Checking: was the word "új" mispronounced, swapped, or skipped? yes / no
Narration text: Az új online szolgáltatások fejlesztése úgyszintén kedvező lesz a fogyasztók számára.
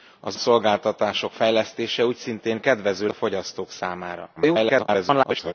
yes